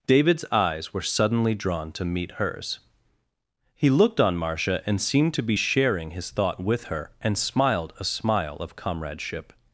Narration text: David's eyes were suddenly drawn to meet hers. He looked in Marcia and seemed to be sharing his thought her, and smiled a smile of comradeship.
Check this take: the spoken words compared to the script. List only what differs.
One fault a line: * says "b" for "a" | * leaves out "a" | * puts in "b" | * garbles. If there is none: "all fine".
* says "on" for "in"
* puts in "with"